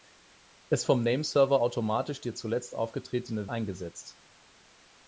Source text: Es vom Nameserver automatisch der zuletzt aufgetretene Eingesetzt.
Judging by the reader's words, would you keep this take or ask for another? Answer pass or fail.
pass